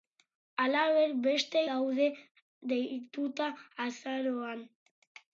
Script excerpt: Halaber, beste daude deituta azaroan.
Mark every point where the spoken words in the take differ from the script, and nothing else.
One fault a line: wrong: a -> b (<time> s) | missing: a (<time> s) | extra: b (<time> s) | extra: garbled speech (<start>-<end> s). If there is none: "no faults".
no faults